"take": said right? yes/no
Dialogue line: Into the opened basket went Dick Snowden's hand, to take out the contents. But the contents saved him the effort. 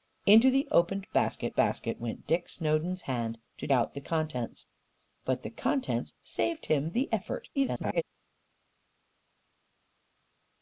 no